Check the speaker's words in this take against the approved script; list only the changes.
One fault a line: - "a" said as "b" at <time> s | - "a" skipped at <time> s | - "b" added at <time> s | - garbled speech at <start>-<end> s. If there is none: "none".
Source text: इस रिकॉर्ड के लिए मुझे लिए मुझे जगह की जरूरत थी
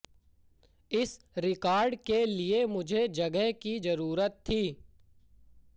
- "लिए मुझे" skipped at 3.1 s